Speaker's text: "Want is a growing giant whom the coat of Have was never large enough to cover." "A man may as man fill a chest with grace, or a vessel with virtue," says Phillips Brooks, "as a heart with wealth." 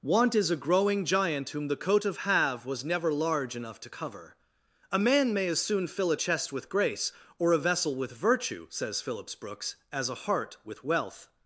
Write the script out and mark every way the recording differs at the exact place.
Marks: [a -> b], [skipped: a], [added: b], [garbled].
"Want is a growing giant whom the coat of Have was never large enough to cover." "A man may as [man -> soon] fill a chest with grace, or a vessel with virtue," says Phillips Brooks, "as a heart with wealth."